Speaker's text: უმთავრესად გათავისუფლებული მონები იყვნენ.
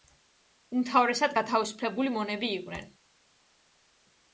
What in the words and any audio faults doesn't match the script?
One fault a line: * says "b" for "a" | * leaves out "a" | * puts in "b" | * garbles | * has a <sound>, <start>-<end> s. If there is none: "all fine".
all fine